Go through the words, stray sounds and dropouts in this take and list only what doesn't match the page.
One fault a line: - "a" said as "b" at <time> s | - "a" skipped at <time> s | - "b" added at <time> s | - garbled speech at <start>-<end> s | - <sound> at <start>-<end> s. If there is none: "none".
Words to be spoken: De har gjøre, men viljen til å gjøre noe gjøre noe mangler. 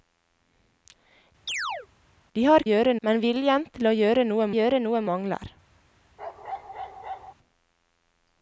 - chirp at 1.5-1.9 s
- bark at 6.2-7.3 s